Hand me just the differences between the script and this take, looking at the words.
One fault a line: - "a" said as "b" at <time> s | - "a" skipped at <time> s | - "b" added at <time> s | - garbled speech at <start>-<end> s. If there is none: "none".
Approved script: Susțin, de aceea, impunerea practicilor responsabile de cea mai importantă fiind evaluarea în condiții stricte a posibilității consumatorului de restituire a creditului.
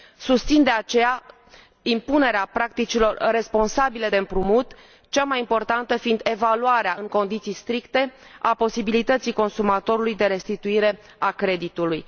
- "împrumut" added at 4.2 s